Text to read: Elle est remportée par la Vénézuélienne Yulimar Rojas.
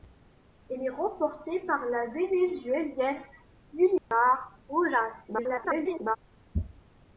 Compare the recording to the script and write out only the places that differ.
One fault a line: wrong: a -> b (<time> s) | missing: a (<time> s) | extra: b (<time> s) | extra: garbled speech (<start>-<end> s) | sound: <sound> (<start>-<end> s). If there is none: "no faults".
sound: dropout (4.0-4.1 s)
extra: garbled speech (5.3-6.2 s)